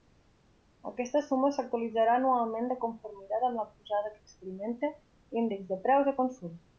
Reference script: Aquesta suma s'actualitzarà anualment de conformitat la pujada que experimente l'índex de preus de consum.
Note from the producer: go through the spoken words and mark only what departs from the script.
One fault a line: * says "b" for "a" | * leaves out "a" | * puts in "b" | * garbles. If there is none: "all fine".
* puts in "amb"